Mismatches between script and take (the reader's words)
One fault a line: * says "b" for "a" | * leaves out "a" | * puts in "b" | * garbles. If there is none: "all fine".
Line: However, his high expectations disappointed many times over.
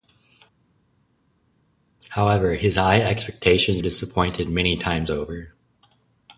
all fine